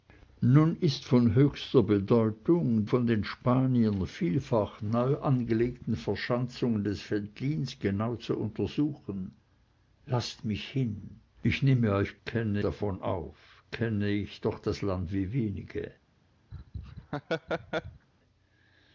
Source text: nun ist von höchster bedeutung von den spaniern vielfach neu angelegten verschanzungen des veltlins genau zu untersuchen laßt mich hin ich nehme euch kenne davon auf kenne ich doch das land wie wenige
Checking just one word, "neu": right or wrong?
right